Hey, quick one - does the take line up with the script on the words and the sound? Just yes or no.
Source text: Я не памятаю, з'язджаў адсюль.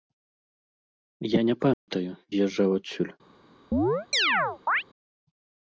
no